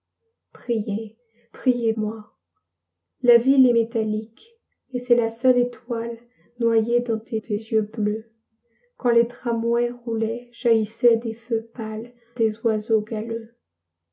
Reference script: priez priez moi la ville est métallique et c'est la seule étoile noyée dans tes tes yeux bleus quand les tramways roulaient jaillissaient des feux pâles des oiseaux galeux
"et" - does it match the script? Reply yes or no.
yes